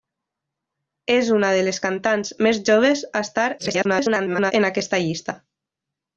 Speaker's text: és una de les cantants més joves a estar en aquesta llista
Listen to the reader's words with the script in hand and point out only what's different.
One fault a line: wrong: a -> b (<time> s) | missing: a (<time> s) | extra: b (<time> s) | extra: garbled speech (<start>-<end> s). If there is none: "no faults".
extra: garbled speech (3.6-4.5 s)